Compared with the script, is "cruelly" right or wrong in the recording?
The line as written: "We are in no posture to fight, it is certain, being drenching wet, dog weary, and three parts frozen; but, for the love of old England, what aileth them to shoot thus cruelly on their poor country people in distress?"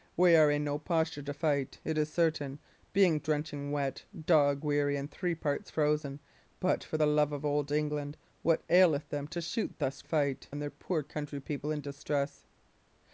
wrong